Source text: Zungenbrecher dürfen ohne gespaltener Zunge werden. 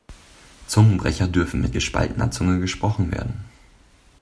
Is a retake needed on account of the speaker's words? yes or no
yes